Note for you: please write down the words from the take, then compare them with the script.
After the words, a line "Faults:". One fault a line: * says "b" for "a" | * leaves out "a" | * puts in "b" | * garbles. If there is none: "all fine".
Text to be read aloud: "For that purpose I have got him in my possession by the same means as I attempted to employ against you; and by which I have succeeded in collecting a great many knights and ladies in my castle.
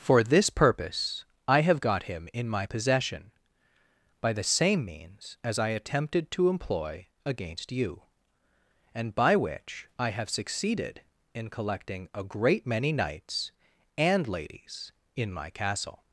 "For this purpose I have got him in my possession by the same means as I attempted to employ against you; and by which I have succeeded in collecting a great many knights and ladies in my castle.
Faults:
* says "this" for "that"